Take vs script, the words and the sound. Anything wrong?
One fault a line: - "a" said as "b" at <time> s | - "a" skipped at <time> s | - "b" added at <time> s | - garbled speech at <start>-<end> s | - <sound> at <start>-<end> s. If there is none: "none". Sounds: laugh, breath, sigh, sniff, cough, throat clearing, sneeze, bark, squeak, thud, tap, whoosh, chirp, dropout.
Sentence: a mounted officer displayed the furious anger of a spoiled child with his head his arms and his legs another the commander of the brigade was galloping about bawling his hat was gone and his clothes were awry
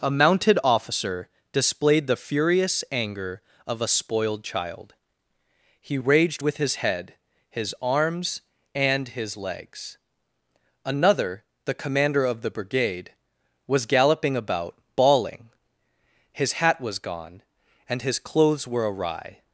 - "he raged" added at 5.8 s